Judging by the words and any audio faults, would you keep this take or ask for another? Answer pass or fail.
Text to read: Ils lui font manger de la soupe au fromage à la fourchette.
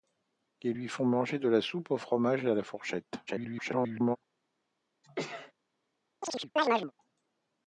fail